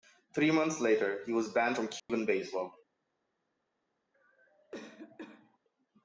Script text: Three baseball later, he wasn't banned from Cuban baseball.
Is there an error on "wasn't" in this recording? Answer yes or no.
yes